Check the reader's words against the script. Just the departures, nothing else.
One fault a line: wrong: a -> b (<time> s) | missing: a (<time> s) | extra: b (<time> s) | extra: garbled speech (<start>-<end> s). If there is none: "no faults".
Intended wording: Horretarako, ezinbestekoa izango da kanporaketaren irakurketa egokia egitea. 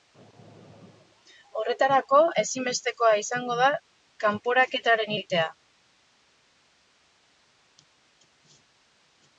missing: irakurketa egokia (5.1 s)